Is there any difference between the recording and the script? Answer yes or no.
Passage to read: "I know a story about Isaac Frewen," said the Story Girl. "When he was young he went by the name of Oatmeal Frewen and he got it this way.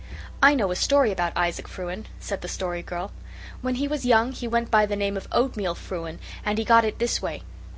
no